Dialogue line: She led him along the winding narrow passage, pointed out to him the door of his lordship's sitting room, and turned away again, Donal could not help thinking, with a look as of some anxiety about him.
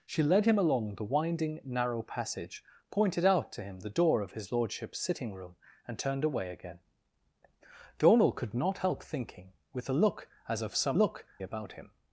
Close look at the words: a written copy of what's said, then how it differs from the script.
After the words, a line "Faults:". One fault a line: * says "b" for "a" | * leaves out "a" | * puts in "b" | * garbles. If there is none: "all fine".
She led him along the winding narrow passage, pointed out to him the door of his lordship's sitting room, and turned away again, Donal could not help thinking, with a look as of some look about him.
Faults:
* says "look" for "anxiety"